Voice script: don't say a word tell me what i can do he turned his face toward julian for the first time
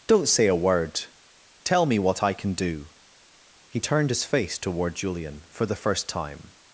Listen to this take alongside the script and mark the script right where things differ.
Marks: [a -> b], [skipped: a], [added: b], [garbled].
don't say a word tell me what i can do he turned his face toward julian for the first time